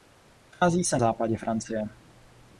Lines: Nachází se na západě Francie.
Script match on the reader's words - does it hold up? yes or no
no